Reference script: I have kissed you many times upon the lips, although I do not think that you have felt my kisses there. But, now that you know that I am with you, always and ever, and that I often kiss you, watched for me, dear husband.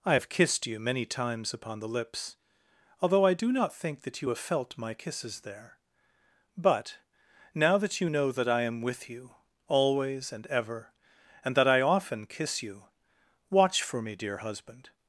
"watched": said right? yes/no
no